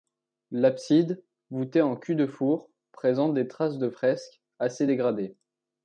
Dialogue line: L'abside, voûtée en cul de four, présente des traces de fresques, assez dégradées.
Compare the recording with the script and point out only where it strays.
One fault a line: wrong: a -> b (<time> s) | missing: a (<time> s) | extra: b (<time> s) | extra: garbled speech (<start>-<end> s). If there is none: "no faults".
no faults